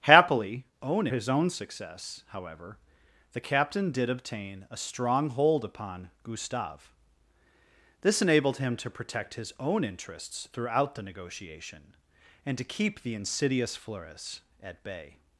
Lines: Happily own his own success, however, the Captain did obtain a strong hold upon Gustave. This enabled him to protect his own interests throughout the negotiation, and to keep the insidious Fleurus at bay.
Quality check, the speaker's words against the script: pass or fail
pass